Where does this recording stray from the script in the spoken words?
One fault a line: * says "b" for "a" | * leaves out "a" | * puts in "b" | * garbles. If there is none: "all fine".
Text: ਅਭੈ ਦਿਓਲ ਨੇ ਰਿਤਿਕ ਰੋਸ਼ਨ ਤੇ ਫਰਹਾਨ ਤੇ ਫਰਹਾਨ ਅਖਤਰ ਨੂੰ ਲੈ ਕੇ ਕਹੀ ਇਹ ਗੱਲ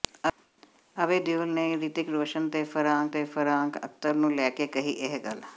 all fine